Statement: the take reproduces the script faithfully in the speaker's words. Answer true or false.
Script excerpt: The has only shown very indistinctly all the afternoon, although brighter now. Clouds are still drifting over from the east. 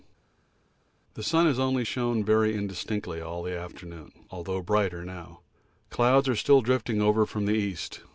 false